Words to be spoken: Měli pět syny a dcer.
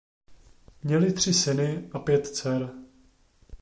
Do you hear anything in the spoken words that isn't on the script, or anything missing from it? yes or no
yes